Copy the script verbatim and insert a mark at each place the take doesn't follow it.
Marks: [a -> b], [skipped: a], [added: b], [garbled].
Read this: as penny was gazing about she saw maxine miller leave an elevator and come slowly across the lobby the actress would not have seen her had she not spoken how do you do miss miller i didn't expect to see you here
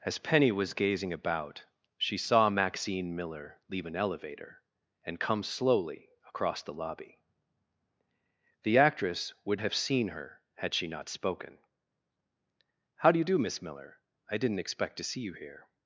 as penny was gazing about she saw maxine miller leave an elevator and come slowly across the lobby the actress would [skipped: not] have seen her had she not spoken how do you do miss miller i didn't expect to see you here